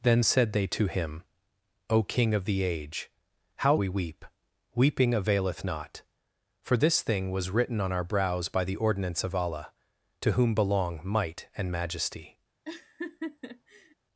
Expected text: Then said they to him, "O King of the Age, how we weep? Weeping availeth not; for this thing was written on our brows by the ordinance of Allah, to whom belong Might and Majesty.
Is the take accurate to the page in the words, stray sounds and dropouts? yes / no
no